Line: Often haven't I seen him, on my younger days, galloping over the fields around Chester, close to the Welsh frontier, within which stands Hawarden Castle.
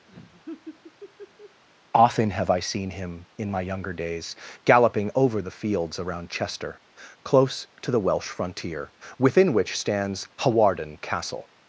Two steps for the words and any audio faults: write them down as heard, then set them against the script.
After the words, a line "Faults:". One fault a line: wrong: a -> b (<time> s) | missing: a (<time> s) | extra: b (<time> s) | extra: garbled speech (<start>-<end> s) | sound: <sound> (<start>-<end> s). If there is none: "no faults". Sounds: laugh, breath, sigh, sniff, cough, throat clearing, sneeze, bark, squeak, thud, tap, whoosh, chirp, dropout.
Often have I seen him, in my younger days, galloping over the fields around Chester, close to the Welsh frontier, within which stands Hawarden Castle.
Faults:
sound: laugh (0.1-1.6 s)
wrong: haven't -> have (2.3 s)
wrong: on -> in (3.4 s)